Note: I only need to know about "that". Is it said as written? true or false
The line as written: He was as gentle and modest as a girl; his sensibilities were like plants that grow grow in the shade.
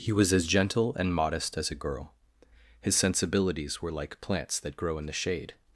true